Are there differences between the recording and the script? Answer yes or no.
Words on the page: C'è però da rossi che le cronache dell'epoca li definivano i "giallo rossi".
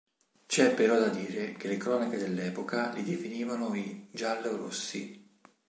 yes